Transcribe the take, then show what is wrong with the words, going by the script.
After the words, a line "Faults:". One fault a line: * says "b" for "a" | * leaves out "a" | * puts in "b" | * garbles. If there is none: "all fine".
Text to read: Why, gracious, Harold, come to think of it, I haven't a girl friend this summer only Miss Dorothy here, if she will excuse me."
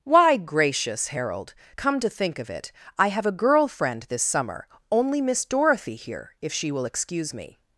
Why, gracious, Harold, come to think of it, I have a girl friend this summer only Miss Dorothy here, if she will excuse me."
Faults:
* says "have" for "haven't"